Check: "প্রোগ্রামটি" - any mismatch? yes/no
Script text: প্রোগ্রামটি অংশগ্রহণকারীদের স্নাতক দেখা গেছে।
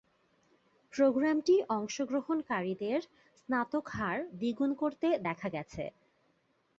no